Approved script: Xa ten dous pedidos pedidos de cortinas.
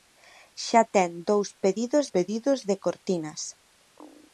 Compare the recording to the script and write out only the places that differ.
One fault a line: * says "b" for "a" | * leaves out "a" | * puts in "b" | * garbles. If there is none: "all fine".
all fine